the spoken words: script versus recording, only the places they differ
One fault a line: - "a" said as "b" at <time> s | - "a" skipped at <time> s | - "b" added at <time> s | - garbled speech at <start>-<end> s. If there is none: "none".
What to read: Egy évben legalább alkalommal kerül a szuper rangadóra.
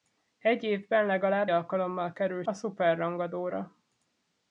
none